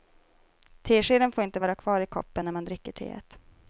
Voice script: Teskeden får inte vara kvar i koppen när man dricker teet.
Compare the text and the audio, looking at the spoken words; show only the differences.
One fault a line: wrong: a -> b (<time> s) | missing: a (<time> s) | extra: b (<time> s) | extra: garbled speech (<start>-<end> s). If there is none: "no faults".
no faults